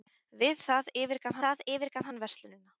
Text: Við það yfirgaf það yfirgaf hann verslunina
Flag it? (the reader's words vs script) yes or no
no